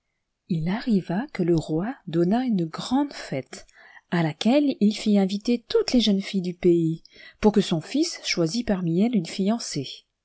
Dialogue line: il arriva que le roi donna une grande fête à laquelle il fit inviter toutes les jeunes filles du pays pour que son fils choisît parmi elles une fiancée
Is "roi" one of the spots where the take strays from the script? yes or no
no